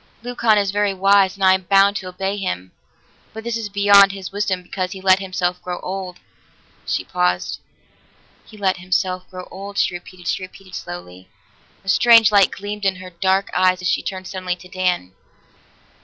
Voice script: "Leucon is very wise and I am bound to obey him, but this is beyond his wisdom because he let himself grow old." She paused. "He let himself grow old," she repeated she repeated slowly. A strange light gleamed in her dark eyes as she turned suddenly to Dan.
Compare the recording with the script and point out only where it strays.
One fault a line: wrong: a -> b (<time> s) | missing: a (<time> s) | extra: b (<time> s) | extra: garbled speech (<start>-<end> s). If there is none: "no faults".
no faults